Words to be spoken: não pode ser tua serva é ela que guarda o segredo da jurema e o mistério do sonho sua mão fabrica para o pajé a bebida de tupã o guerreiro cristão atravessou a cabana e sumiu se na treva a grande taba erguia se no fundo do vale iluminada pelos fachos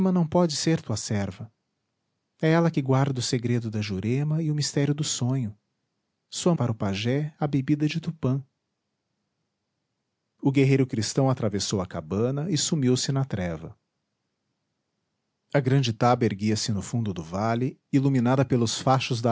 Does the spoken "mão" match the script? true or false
false